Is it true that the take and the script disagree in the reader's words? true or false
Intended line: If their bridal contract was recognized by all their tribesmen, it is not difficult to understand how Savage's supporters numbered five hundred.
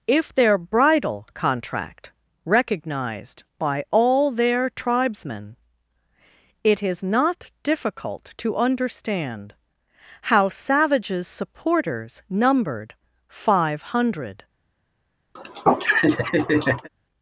true